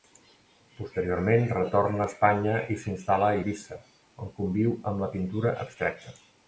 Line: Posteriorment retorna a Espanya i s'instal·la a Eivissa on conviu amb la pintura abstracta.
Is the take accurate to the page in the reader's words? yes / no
yes